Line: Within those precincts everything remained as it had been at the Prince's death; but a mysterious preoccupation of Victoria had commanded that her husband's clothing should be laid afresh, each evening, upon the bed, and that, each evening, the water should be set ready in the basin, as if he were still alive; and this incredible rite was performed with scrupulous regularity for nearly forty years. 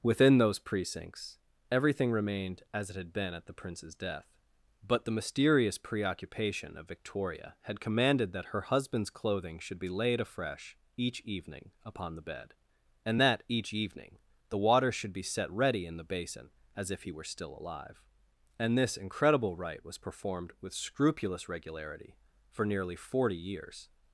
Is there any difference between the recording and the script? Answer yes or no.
yes